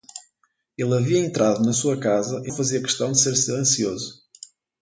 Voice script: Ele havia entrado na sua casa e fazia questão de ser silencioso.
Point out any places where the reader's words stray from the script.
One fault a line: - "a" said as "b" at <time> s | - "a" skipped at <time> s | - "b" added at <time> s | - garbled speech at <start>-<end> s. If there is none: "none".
none